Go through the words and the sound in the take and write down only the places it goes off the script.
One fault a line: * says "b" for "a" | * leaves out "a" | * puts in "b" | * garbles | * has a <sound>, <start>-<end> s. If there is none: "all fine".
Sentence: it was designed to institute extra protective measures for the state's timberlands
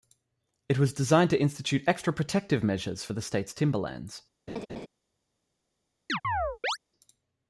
* has a laugh, 4.5-4.9 s
* has a chirp, 6.1-6.8 s